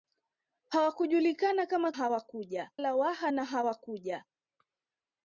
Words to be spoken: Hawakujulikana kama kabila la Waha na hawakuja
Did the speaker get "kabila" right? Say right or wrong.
wrong